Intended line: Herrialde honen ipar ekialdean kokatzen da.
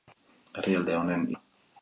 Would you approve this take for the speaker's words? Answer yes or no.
no